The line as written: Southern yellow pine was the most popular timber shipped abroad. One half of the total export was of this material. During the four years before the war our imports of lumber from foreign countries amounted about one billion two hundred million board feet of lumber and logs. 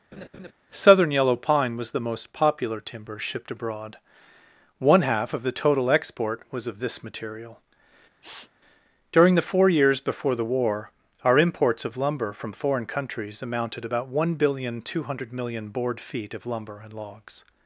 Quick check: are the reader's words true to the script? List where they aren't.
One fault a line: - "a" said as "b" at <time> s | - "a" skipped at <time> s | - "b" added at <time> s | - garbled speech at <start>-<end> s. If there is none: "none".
none